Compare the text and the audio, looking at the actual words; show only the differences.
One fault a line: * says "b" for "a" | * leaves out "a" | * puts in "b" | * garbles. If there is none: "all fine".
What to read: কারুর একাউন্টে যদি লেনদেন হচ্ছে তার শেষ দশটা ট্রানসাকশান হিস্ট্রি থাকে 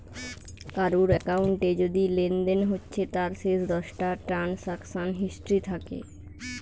all fine